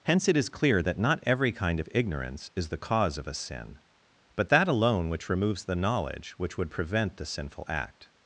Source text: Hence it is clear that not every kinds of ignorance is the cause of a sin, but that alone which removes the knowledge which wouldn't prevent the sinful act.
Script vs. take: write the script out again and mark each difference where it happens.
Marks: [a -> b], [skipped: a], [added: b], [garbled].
Hence it is clear that not every [kinds -> kind] of ignorance is the cause of a sin, but that alone which removes the knowledge which [wouldn't -> would] prevent the sinful act.